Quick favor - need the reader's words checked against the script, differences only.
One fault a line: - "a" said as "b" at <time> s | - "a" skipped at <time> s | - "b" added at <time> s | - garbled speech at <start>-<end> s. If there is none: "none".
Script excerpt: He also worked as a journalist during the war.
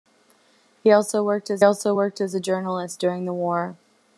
- "also worked as" added at 1.6 s